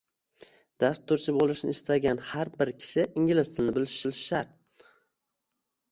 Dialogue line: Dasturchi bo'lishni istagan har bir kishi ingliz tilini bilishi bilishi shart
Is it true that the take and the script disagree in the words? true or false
false